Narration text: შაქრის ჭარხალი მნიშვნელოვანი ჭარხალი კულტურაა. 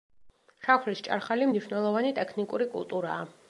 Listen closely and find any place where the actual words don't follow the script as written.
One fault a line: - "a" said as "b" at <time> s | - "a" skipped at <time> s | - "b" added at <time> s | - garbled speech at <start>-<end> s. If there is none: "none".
- "ჭარხალი" said as "ტექნიკური" at 2.2 s